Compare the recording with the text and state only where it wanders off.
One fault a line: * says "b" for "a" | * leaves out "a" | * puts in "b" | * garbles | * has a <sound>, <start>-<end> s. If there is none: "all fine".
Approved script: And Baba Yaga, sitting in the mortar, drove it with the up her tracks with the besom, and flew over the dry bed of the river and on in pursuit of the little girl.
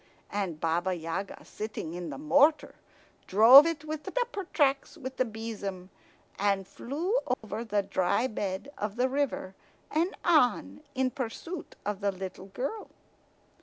* has a dropout, 7.3-7.4 s